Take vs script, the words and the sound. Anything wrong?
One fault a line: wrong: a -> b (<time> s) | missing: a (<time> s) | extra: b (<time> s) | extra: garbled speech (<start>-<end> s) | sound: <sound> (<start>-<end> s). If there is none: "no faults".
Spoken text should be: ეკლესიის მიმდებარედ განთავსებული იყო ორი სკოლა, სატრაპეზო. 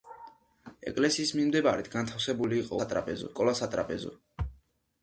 wrong: ორი -> სატრაპეზო (2.8 s)